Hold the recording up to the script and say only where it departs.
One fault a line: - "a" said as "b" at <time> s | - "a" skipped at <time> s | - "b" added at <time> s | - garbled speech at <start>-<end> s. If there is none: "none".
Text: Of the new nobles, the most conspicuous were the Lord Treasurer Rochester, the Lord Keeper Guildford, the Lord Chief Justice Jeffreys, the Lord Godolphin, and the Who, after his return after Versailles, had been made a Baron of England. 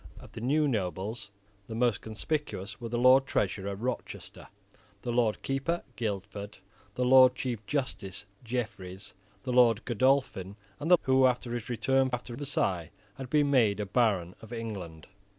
none